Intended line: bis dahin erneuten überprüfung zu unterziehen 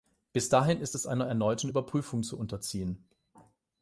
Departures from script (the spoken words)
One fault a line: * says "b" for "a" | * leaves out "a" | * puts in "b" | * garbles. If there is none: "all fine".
* puts in "ist es einer"